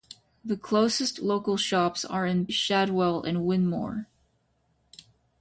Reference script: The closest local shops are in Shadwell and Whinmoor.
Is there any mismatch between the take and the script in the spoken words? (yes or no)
no